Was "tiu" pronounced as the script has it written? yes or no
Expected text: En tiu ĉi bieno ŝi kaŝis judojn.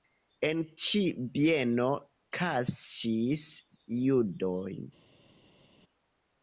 no